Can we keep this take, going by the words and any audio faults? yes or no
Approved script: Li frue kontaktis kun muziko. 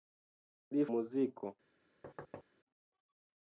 no